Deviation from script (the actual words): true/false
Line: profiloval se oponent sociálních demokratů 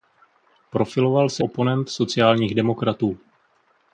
false